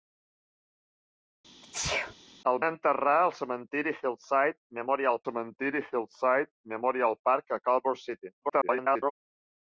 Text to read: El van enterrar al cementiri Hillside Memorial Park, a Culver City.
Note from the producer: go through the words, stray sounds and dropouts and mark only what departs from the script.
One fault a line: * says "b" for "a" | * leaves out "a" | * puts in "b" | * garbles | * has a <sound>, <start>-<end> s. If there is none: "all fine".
* has a sneeze, 1.6-2.1 s
* leaves out "van"
* puts in "cementiri Hillside Memorial"
* garbles